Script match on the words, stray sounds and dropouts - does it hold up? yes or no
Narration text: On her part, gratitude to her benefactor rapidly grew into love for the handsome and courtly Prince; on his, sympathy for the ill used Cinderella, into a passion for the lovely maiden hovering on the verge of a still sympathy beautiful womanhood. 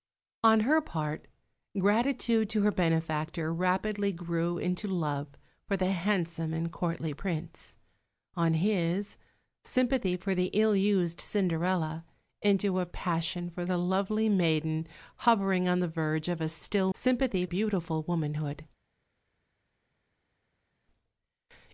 yes